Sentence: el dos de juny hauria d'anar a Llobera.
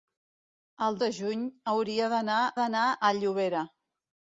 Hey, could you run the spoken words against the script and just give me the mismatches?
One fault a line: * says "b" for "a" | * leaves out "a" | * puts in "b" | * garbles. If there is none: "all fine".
* leaves out "dos"
* puts in "d'anar"